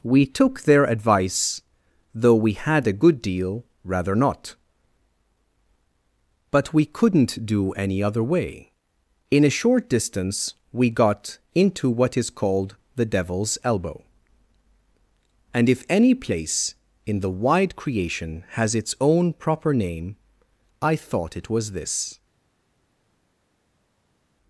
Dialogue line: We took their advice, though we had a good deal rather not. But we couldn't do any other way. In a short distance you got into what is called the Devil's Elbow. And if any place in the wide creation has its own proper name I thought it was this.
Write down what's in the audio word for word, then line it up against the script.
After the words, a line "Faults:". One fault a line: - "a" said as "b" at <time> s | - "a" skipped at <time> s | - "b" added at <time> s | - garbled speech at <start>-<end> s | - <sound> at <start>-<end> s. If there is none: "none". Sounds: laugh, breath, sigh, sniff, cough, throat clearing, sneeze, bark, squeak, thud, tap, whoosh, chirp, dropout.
We took their advice, though we had a good deal rather not. But we couldn't do any other way. In a short distance we got into what is called the Devil's Elbow. And if any place in the wide creation has its own proper name I thought it was this.
Faults:
- "you" said as "we" at 10.7 s